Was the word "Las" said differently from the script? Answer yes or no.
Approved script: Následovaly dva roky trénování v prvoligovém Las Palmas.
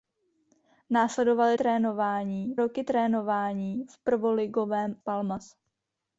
yes